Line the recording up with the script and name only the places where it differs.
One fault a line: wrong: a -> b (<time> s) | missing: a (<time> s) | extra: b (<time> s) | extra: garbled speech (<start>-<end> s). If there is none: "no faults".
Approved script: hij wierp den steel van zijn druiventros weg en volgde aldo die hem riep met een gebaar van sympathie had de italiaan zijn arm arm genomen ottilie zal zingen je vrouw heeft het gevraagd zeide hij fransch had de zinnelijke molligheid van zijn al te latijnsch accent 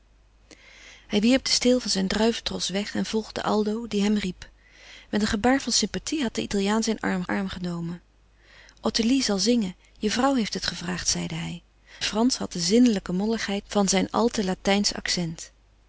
no faults